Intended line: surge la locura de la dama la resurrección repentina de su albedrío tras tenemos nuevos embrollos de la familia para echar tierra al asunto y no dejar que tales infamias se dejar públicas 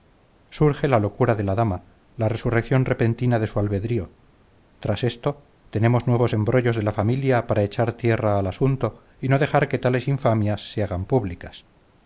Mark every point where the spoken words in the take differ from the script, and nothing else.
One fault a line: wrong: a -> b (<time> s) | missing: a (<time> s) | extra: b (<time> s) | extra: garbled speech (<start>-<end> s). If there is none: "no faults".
extra: esto (5.0 s)
wrong: dejar -> hagan (10.8 s)